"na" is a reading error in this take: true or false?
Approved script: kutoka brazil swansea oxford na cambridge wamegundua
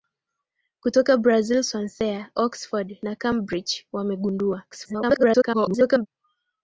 false